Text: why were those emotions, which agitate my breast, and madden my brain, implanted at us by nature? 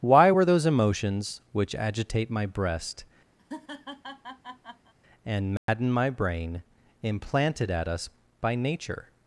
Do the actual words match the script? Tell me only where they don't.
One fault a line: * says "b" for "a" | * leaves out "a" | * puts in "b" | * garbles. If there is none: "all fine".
all fine